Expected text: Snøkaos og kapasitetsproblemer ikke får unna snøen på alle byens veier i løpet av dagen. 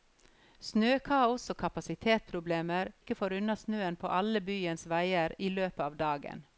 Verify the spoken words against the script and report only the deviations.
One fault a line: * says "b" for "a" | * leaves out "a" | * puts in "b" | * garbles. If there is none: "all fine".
all fine